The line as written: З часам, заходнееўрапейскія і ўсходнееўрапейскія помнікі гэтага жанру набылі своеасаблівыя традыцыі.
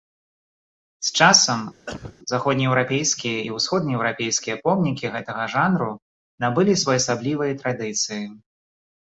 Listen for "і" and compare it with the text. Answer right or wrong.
right